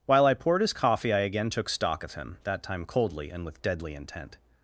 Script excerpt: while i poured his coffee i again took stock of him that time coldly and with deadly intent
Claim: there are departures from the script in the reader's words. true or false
false